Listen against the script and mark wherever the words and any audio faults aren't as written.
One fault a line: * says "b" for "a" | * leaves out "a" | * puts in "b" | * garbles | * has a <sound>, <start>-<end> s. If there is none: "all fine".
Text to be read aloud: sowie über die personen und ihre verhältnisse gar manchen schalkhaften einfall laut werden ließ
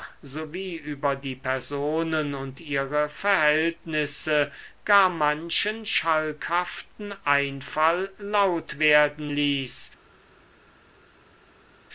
all fine